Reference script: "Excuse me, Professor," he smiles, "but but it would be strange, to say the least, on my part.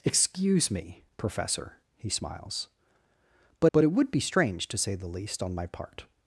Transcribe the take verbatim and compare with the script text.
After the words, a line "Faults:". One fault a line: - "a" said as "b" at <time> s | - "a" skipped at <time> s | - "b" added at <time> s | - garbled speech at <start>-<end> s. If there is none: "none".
"Excuse me, Professor," he smiles, "but but it would be strange, to say the least, on my part.
Faults:
none